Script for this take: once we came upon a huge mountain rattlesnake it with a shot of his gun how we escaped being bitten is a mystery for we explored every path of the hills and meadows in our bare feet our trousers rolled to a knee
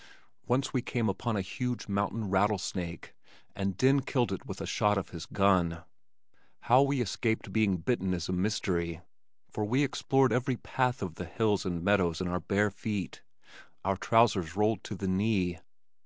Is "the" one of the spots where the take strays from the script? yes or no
no